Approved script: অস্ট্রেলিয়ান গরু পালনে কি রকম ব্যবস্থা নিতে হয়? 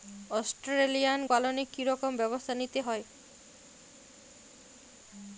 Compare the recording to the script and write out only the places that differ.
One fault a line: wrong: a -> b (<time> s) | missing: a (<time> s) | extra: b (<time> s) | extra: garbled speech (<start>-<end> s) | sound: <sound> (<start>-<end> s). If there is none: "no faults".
missing: গরু (1.2 s)